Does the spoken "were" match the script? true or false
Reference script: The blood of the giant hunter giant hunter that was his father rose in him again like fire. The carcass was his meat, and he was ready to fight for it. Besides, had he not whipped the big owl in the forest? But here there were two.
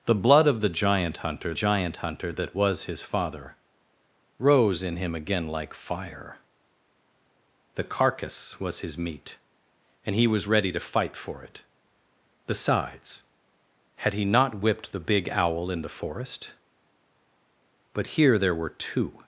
true